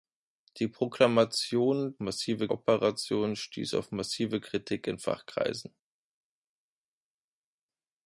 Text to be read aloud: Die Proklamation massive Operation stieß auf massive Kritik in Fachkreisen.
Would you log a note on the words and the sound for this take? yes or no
no